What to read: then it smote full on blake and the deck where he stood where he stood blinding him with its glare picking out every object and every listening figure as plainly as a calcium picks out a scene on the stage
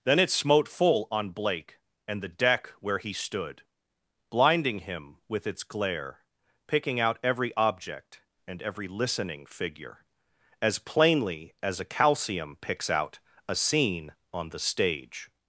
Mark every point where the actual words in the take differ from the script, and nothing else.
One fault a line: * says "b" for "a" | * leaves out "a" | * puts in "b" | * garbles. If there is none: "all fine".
* leaves out "where he stood"